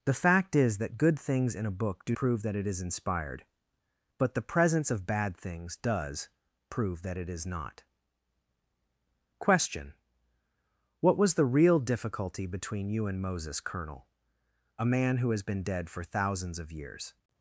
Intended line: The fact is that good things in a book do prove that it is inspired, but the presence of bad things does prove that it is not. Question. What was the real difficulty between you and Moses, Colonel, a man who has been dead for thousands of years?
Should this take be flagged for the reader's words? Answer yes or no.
no